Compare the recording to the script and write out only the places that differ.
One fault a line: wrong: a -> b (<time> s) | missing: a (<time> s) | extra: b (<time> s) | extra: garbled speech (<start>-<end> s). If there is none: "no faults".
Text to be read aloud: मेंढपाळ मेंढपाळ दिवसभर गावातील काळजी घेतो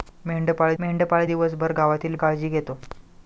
no faults